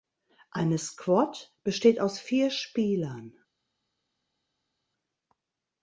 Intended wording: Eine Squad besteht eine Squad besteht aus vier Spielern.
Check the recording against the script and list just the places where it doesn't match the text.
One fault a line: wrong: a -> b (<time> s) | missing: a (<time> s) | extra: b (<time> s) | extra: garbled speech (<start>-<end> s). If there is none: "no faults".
missing: eine Squad besteht (2.0 s)